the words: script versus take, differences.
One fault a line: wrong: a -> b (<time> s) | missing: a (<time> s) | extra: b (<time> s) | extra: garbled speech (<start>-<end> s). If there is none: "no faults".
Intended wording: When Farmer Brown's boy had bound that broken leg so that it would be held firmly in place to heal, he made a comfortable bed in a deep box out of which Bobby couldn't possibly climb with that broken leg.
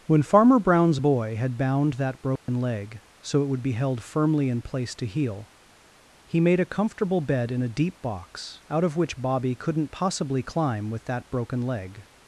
missing: that (3.4 s)